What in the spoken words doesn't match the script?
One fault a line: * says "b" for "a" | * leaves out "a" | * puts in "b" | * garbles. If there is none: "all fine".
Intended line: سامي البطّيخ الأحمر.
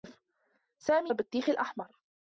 all fine